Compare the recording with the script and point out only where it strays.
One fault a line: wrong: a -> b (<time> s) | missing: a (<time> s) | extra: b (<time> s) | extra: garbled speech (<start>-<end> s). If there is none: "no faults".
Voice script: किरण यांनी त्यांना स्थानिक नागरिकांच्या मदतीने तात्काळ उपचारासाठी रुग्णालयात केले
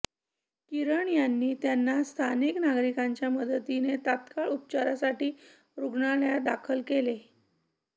extra: दाखल (6.4 s)